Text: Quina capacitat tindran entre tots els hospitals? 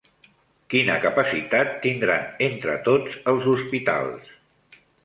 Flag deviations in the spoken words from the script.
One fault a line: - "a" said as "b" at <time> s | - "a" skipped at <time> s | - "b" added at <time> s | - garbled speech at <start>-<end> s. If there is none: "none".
none